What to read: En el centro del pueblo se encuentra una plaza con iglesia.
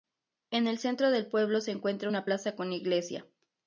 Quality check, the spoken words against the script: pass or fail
pass